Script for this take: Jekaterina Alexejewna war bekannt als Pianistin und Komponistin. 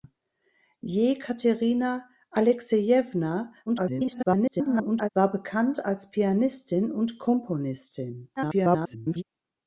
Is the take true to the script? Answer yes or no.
no